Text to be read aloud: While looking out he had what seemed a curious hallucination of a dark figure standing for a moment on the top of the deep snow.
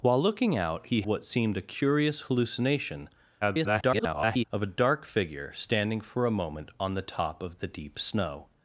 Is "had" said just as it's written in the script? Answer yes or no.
no